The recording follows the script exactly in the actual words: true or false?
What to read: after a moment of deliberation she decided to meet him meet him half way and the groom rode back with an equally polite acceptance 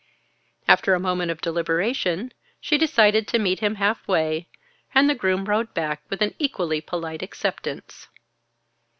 false